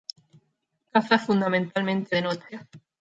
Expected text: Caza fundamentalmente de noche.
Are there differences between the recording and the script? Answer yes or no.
no